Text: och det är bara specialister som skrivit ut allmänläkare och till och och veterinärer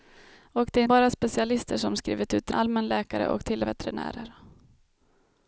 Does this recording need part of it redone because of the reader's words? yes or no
no